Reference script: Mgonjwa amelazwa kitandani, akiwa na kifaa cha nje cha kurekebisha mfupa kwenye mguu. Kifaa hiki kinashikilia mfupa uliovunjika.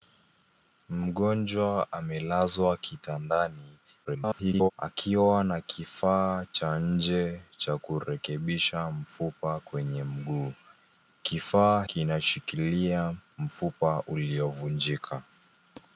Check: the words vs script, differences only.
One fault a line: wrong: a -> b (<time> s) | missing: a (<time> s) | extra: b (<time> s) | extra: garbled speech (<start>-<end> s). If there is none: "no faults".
extra: garbled speech (4.0-4.7 s)
missing: hiki (11.8 s)